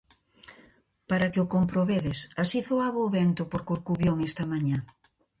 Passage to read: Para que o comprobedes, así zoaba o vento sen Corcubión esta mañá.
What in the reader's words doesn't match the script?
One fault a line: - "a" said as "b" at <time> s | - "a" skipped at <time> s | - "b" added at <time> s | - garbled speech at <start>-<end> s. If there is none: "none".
- "sen" said as "por" at 3.5 s